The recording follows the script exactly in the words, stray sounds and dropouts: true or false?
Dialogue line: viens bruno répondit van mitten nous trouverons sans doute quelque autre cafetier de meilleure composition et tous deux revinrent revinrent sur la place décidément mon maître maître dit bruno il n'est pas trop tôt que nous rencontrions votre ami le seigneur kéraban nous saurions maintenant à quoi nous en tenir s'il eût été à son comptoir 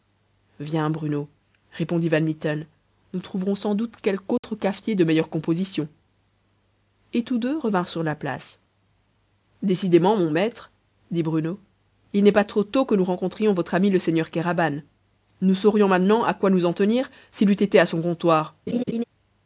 false